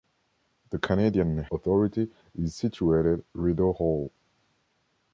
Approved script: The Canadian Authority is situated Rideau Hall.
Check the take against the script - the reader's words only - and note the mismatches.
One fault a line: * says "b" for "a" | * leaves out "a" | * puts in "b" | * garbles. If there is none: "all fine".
all fine